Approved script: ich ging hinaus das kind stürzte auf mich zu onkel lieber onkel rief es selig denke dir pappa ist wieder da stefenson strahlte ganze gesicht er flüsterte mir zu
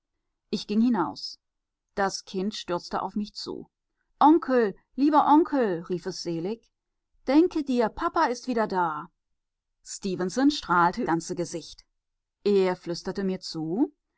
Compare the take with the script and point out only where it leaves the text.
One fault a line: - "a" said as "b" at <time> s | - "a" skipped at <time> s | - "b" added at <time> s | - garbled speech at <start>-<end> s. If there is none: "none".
none